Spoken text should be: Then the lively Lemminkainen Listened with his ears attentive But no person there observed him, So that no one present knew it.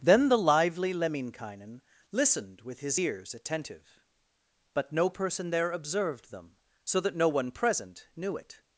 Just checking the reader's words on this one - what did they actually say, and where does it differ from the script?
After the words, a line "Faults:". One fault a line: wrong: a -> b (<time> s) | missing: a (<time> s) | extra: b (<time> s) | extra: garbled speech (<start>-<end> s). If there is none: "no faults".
Then the lively Lemminkainen Listened with his ears attentive But no person there observed them, So that no one present knew it.
Faults:
wrong: him -> them (6.3 s)